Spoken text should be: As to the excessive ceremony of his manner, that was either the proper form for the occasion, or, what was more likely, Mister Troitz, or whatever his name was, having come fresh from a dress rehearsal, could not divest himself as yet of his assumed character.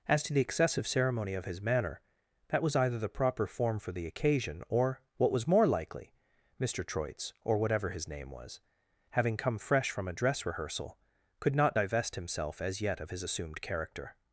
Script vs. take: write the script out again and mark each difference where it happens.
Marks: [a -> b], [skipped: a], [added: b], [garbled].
As to the excessive ceremony of his manner, that was either the proper form for the occasion, or, what was more likely, Mister Troitz, or whatever his name was, having come fresh from a dress rehearsal, could not divest himself as yet of his assumed character.